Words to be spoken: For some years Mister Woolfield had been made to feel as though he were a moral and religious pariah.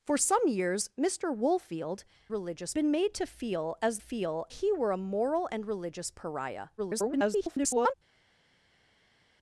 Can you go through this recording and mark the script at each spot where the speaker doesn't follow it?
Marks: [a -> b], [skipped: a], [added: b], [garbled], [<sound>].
For some years Mister Woolfield [had -> religious] been made to feel as [though -> feel] he were a moral and religious pariah. [garbled]